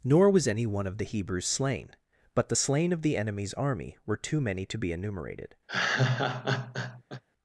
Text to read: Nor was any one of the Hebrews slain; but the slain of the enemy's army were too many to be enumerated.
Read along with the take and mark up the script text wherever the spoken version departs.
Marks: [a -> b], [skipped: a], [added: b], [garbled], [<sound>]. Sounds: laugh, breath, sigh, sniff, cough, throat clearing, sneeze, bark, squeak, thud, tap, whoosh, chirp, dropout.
Nor was any one of the Hebrews slain; but the slain of the enemy's army were too many to be enumerated. [laugh]